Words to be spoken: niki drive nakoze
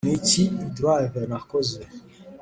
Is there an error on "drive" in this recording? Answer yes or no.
no